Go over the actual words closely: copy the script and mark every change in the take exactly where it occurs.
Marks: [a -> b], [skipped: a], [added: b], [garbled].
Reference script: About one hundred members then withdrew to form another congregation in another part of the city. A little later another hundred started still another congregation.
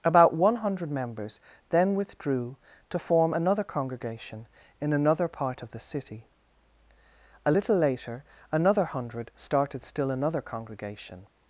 About one hundred members then withdrew to form another congregation in another part of the city. A little later another hundred started still another congregation.